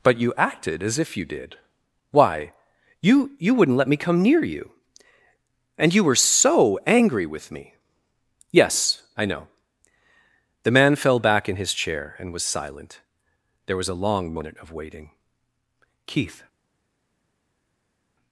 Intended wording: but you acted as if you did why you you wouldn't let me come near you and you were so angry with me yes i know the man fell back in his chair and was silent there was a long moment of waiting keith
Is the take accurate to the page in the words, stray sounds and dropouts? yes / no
yes